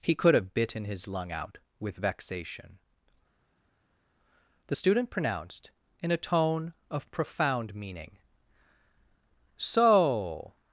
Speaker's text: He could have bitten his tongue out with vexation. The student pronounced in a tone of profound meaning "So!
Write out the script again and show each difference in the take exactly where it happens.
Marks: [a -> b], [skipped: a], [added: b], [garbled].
He could have bitten his [tongue -> lung] out with vexation. The student pronounced in a tone of profound meaning "So!